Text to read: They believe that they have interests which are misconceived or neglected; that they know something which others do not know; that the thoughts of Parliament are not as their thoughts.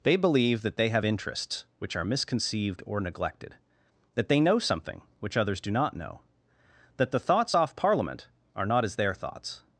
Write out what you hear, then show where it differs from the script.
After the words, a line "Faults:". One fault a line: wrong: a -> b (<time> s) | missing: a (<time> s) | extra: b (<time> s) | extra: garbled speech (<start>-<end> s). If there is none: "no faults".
They believe that they have interests which are misconceived or neglected; that they know something which others do not know; that the thoughts off Parliament are not as their thoughts.
Faults:
wrong: of -> off (7.5 s)